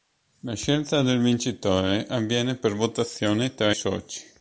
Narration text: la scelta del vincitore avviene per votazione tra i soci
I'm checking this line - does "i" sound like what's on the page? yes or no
no